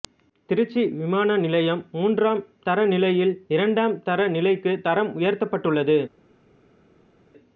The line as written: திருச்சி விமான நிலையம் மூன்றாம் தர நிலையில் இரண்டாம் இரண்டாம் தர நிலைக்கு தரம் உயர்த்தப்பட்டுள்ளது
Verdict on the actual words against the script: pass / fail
fail